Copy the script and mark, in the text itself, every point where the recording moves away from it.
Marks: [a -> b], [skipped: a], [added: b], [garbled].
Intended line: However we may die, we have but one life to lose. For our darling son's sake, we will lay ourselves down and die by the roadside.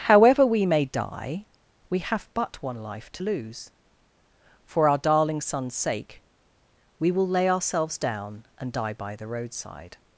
However we may die, we have but one life to lose. For our darling son's sake, we will lay ourselves down and die by the roadside.